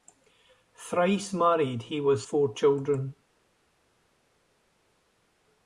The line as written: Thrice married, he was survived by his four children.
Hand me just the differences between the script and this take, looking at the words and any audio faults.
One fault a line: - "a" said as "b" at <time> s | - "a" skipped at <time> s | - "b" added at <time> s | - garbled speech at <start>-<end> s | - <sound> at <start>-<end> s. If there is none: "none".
- "survived by his" skipped at 2.2 s